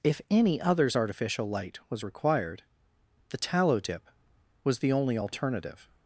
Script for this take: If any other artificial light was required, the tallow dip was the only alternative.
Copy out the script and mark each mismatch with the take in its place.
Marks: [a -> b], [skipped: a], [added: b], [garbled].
If any [other -> others] artificial light was required, the tallow dip was the only alternative.